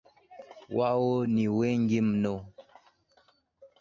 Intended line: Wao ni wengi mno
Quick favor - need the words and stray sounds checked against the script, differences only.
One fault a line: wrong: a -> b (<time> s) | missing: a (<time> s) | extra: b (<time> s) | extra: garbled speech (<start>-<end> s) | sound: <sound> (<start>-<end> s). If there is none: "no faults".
no faults